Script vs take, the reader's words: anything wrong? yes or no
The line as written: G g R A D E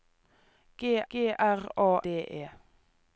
no